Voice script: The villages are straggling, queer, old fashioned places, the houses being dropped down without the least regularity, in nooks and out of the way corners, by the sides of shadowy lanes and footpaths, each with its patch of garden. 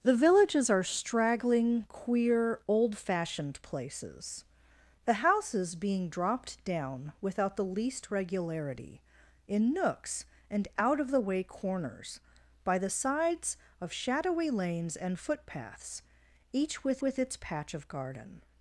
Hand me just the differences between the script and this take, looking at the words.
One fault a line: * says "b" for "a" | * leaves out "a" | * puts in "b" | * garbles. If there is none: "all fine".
* puts in "with"